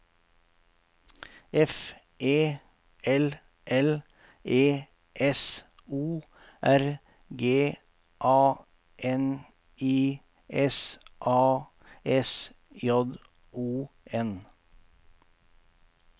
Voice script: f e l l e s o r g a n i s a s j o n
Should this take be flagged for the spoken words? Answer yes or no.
no